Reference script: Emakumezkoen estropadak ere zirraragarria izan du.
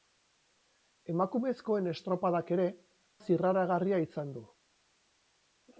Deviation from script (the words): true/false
false